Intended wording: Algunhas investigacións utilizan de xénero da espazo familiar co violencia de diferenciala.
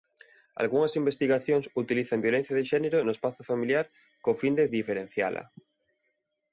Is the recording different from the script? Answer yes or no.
yes